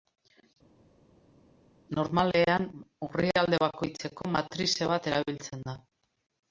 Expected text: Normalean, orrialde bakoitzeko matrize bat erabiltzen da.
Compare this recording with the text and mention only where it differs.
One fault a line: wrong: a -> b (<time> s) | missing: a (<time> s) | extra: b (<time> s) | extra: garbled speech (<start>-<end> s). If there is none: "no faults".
no faults